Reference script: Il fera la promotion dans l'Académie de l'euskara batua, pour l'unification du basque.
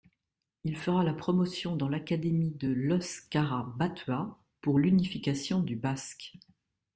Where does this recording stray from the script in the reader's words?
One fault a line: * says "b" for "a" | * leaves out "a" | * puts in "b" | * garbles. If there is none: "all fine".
all fine